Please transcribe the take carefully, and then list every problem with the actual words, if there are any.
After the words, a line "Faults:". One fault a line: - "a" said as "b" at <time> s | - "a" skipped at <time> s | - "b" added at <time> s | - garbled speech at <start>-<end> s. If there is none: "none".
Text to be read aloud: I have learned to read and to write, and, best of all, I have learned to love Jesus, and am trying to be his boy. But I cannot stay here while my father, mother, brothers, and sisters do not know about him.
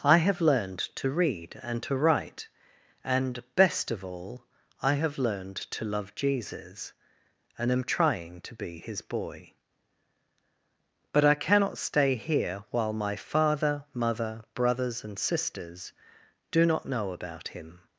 I have learned to read and to write, and, best of all, I have learned to love Jesus, and am trying to be his boy. But I cannot stay here while my father, mother, brothers, and sisters do not know about him.
Faults:
none